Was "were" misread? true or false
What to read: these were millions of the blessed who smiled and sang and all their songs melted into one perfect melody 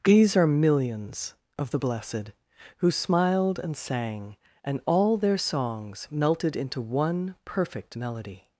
true